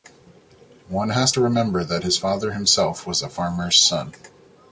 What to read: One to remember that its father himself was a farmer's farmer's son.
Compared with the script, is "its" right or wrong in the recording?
wrong